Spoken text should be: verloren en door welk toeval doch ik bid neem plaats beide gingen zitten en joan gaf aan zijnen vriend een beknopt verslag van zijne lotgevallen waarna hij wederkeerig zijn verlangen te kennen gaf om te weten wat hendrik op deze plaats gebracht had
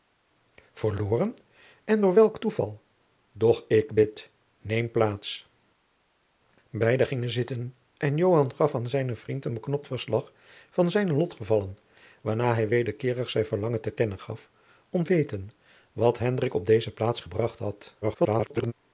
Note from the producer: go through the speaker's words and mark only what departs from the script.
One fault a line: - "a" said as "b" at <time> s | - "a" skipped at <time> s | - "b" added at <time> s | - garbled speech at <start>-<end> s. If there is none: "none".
- "te" skipped at 15.0 s
- garbled speech at 18.0-18.7 s